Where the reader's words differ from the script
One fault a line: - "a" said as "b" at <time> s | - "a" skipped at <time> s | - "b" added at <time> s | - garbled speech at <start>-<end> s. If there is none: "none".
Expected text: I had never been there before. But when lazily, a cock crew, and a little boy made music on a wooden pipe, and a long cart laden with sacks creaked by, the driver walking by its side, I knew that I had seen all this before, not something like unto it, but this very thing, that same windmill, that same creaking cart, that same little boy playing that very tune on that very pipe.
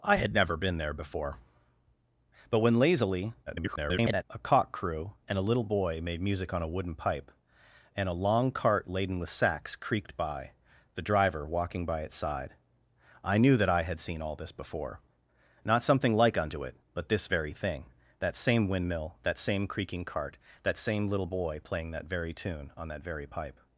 - garbled speech at 3.5-4.2 s